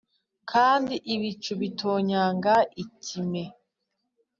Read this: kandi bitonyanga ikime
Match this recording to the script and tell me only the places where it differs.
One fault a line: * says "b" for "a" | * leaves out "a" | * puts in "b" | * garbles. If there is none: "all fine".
* puts in "ibicu"